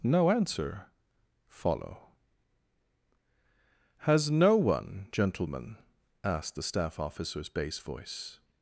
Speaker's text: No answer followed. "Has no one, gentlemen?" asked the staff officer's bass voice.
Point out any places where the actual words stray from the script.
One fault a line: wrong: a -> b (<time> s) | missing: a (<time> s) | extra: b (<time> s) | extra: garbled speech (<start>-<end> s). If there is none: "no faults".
wrong: followed -> follow (1.5 s)